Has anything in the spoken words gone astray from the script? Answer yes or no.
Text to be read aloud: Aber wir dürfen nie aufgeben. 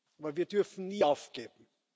no